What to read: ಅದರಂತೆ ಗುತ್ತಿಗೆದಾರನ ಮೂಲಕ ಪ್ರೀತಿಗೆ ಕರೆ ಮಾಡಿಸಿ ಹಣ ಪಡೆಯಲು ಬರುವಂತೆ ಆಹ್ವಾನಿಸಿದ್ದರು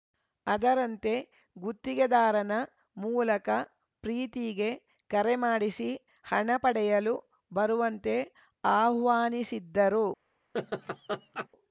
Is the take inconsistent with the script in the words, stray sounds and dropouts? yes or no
yes